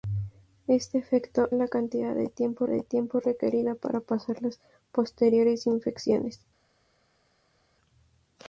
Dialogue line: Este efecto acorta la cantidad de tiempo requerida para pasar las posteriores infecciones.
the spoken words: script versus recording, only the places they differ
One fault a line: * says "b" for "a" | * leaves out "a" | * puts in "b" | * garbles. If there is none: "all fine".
* leaves out "acorta"
* puts in "de tiempo"